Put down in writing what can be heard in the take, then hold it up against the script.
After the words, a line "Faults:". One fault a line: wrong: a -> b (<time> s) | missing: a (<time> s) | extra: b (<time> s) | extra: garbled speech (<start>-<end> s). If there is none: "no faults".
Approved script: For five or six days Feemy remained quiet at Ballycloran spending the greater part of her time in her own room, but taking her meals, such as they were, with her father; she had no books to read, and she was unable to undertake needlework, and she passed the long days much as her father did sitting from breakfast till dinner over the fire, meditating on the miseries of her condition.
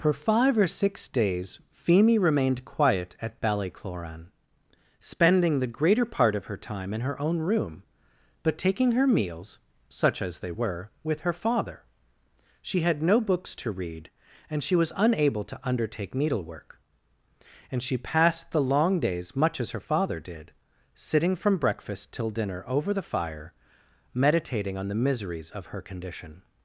For five or six days Feemy remained quiet at Ballycloran spending the greater part of her time in her own room, but taking her meals, such as they were, with her father; she had no books to read, and she was unable to undertake needlework, and she passed the long days much as her father did sitting from breakfast till dinner over the fire, meditating on the miseries of her condition.
Faults:
no faults